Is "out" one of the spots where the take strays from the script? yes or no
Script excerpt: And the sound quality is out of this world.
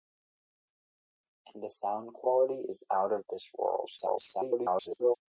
no